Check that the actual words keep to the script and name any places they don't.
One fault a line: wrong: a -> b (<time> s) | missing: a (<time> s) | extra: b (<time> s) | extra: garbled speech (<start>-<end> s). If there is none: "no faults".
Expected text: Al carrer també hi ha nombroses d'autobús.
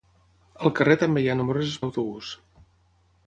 no faults